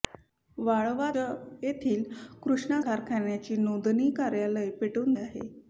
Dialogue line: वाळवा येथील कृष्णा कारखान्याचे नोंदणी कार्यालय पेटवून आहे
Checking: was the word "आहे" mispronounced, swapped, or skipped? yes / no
no